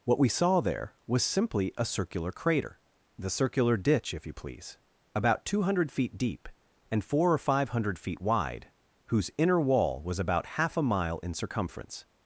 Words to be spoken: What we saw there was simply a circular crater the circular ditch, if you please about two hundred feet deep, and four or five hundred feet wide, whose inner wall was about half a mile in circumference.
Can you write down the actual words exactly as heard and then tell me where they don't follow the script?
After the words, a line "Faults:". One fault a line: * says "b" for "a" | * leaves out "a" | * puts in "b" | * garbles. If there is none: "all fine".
What we saw there was simply a circular crater the circular ditch, if you please about two hundred feet deep, and four or five hundred feet wide, whose inner wall was about half a mile in circumference.
Faults:
all fine